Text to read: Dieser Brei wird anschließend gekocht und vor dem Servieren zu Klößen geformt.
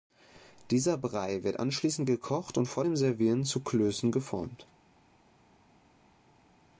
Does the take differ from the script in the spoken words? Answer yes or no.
no